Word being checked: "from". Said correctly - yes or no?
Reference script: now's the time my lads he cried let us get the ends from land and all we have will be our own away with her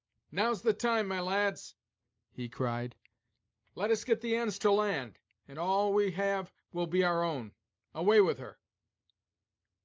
no